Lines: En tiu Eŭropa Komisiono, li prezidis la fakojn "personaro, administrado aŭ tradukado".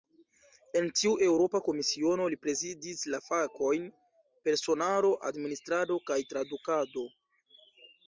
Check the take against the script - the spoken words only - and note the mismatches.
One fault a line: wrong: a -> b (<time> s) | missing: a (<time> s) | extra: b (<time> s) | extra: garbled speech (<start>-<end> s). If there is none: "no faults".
wrong: aŭ -> kaj (6.1 s)